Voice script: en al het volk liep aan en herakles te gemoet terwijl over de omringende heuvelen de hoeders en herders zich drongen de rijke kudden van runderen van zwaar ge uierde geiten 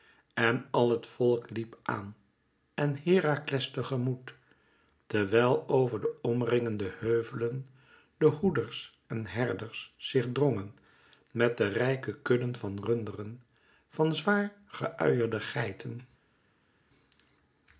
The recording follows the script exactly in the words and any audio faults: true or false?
false